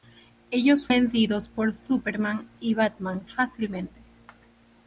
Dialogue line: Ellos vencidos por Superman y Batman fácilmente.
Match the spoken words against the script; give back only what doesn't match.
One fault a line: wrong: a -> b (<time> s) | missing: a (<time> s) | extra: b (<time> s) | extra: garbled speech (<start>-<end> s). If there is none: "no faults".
no faults